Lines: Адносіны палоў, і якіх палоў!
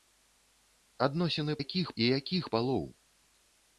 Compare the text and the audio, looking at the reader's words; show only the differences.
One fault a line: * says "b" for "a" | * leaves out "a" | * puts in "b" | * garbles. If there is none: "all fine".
* says "якіх" for "палоў"